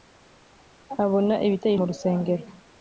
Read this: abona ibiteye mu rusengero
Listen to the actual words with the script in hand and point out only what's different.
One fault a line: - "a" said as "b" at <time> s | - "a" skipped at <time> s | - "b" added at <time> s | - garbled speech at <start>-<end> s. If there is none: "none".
none